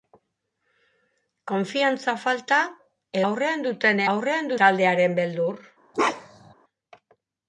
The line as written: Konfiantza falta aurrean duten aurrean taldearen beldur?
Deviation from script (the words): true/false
false